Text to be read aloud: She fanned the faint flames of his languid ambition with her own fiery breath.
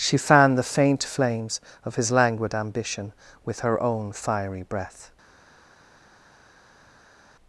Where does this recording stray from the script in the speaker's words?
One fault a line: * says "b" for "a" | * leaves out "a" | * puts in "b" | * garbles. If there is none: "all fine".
all fine